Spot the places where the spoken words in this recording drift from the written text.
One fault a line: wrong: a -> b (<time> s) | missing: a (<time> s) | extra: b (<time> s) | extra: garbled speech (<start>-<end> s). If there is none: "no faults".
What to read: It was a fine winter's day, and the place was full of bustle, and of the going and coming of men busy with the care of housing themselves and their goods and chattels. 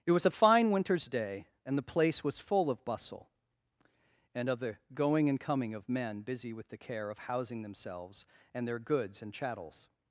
no faults